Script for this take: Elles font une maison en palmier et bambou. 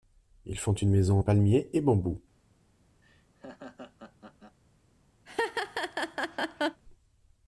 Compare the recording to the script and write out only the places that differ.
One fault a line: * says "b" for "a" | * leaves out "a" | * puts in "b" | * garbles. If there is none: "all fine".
* says "Ils" for "Elles"